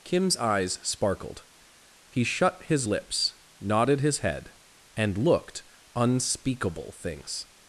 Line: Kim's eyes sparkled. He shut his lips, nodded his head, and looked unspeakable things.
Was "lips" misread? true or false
false